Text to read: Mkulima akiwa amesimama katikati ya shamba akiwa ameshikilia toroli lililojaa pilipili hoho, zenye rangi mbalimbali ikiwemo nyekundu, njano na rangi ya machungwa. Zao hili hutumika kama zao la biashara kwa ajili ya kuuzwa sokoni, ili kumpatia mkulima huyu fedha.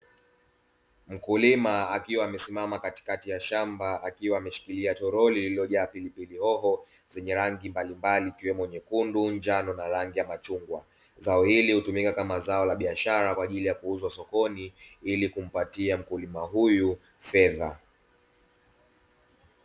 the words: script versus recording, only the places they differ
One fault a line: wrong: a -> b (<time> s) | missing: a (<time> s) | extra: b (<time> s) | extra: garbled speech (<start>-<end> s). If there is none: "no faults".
no faults